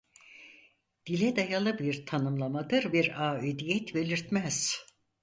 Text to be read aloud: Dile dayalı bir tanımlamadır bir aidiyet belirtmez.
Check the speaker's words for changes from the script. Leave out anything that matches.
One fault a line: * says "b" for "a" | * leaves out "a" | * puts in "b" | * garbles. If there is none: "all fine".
all fine